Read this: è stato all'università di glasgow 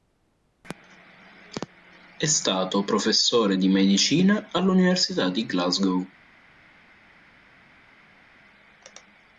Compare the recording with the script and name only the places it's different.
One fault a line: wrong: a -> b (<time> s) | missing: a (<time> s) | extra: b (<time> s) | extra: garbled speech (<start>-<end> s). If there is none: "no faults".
extra: professore di medicina (2.8 s)